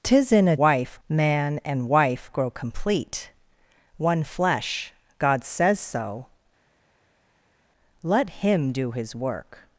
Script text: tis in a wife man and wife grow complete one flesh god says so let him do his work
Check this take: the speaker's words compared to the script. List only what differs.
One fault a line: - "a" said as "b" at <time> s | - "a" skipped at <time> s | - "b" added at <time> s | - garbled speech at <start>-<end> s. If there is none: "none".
none